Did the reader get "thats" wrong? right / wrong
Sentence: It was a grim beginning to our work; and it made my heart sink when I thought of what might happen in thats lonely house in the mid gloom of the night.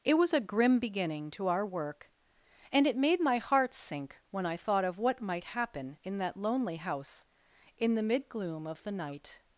wrong